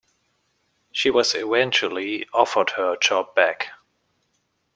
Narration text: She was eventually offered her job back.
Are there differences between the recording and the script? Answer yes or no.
no